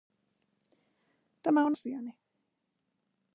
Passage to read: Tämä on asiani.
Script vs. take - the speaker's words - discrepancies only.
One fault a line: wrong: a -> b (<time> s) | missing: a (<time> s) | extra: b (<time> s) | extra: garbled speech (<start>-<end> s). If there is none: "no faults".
no faults